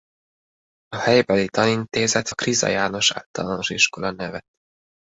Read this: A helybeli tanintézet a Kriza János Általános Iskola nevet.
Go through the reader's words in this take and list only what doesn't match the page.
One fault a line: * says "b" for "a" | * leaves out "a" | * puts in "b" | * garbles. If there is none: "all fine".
all fine